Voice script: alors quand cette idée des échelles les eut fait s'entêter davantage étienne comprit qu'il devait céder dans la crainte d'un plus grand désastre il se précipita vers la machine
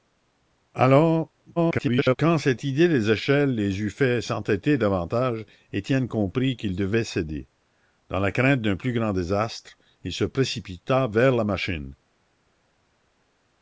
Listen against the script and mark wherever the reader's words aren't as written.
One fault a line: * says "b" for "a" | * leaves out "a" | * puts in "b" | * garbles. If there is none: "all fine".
* garbles